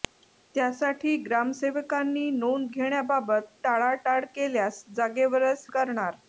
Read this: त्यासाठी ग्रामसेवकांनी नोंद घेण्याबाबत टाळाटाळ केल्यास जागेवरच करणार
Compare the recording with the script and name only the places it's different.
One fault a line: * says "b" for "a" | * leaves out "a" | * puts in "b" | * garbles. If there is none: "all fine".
all fine